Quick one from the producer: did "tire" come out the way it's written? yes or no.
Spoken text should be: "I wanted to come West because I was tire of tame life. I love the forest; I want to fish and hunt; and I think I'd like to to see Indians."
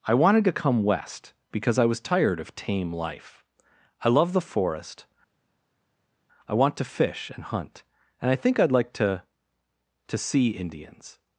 no